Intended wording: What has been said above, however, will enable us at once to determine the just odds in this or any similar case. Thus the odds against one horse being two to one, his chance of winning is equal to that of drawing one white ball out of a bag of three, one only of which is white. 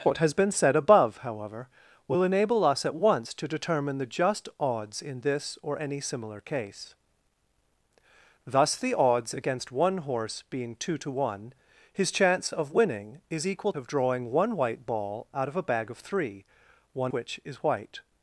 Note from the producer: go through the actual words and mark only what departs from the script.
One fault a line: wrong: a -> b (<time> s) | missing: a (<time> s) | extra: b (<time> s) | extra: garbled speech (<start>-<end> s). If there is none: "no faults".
missing: to that (13.7 s)
missing: only of (17.1 s)